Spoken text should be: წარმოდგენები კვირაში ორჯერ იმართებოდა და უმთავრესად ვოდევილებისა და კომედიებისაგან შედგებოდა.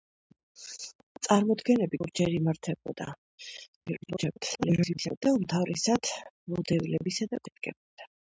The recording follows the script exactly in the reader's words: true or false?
false